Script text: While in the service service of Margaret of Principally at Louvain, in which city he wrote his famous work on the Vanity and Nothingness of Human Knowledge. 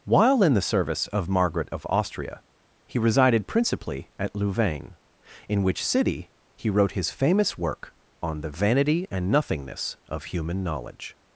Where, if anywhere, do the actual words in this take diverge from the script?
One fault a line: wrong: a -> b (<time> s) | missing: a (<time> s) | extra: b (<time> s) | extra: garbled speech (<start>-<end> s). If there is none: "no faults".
missing: service (1.1 s)
extra: Austria he resided (1.9 s)